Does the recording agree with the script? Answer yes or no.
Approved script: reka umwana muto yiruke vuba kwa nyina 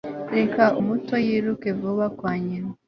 no